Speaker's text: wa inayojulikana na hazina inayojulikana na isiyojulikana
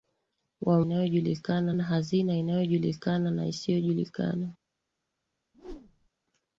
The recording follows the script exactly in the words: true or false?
true